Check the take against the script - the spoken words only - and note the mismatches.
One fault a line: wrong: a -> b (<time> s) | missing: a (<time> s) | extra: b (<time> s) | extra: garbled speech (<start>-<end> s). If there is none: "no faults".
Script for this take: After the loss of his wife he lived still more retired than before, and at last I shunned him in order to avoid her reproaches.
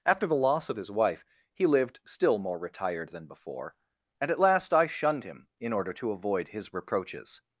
wrong: her -> his (6.5 s)